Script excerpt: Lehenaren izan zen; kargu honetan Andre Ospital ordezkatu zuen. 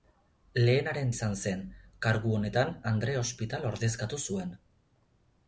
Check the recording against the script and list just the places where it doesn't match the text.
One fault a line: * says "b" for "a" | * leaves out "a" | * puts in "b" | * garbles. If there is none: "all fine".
all fine